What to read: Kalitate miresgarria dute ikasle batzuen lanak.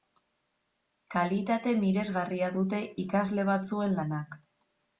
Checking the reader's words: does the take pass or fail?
pass